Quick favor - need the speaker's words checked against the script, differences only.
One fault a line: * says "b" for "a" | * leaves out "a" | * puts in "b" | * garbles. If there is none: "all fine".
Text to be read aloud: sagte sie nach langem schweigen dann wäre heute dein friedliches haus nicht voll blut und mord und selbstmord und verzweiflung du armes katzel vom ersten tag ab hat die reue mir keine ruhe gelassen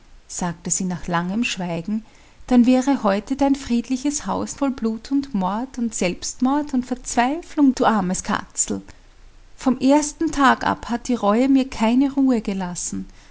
* leaves out "nicht"